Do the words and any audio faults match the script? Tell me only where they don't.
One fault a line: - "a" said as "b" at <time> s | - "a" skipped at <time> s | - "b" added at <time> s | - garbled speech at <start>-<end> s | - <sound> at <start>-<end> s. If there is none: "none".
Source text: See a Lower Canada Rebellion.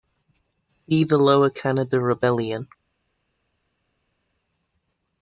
- "a" said as "the" at 1.0 s